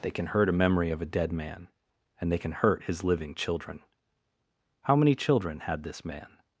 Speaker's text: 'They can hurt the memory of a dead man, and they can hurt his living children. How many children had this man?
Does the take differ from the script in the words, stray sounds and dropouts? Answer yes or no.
yes